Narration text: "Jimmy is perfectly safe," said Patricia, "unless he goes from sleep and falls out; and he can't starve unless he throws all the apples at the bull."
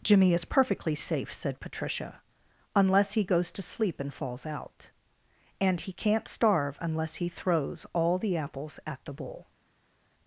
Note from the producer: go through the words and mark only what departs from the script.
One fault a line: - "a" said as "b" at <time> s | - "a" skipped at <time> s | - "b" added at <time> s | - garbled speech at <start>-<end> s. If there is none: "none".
- "from" said as "to" at 3.5 s